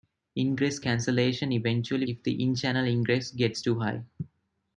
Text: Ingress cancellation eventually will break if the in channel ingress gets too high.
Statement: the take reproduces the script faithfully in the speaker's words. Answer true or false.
false